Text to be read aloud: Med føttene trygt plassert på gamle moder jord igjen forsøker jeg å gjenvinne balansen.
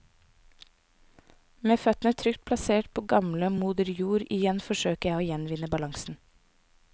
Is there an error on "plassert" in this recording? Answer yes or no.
no